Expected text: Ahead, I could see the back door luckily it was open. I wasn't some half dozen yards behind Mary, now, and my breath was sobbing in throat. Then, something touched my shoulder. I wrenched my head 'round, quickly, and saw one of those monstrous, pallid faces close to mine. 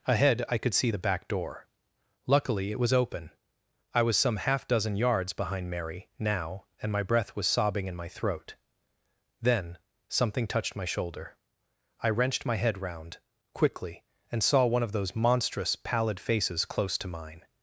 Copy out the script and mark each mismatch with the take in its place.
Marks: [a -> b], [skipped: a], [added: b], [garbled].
Ahead, I could see the back door luckily it was open. I [wasn't -> was] some half dozen yards behind Mary, now, and my breath was sobbing in [added: my] throat. Then, something touched my shoulder. I wrenched my head 'round, quickly, and saw one of those monstrous, pallid faces close to mine.